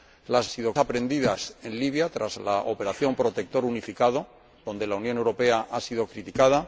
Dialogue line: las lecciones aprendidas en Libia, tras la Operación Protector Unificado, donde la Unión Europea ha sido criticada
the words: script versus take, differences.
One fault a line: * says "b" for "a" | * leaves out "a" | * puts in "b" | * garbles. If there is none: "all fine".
* says "sido" for "lecciones"